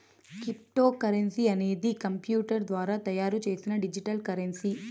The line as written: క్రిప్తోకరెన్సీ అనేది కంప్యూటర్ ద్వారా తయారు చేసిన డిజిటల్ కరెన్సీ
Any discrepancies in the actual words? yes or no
no